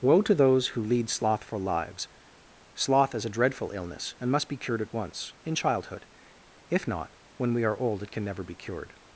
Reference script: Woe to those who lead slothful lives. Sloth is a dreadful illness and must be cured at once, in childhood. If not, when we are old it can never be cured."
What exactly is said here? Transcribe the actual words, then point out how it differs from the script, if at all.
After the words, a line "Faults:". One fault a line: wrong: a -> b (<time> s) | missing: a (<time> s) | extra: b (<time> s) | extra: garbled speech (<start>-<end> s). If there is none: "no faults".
Woe to those who lead slothful lives. Sloth is a dreadful illness and must be cured at once, in childhood. If not, when we are old it can never be cured."
Faults:
no faults